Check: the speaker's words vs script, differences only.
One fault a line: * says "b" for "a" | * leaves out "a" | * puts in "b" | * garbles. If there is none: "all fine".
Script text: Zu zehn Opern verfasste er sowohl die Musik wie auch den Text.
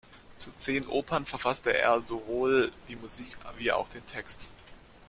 all fine